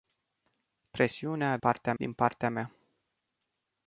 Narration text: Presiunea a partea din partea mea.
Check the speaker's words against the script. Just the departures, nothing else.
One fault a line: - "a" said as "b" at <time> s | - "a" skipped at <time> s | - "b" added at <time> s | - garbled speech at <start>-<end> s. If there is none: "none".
none